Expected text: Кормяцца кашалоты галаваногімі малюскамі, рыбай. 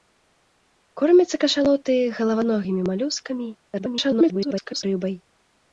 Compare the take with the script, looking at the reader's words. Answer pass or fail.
fail